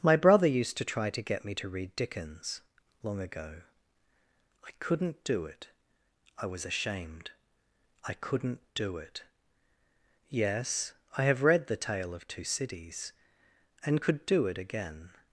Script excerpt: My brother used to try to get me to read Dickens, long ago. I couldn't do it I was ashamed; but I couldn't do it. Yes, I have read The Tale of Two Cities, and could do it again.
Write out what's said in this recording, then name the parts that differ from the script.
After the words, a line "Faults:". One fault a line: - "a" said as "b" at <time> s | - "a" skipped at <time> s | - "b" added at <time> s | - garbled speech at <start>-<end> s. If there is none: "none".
My brother used to try to get me to read Dickens, long ago. I couldn't do it I was ashamed; I couldn't do it. Yes, I have read The Tale of Two Cities, and could do it again.
Faults:
- "but" skipped at 7.3 s